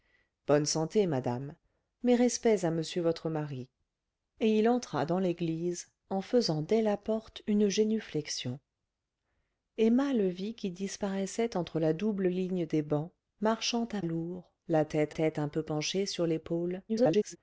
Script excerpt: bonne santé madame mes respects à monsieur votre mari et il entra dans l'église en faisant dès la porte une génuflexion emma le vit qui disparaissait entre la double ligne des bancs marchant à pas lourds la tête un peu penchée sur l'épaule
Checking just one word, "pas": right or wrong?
wrong